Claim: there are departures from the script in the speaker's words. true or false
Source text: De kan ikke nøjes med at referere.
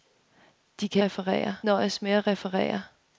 true